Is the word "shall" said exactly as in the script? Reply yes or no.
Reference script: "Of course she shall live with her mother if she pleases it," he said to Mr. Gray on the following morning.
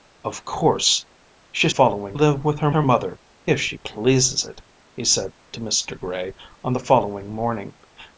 no